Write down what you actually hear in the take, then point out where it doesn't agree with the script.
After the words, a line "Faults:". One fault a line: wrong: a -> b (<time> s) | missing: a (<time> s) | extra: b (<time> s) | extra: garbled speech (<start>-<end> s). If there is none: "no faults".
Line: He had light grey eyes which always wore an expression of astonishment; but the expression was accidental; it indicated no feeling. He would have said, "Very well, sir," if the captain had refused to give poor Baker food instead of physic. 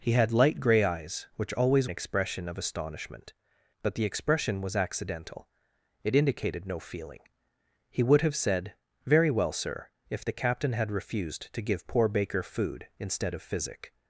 He had light grey eyes which always an expression of astonishment; but the expression was accidental; it indicated no feeling. He would have said, "Very well, sir," if the captain had refused to give poor Baker food instead of physic.
Faults:
missing: wore (1.9 s)